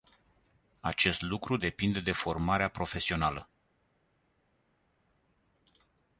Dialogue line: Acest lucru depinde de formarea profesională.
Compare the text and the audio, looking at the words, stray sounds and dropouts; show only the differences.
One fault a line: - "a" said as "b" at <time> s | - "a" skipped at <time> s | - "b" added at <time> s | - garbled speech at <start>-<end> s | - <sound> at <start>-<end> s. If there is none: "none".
none